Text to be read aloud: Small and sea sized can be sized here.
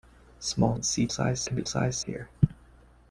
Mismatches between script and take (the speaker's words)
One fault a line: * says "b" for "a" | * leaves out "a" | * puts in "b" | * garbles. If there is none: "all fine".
all fine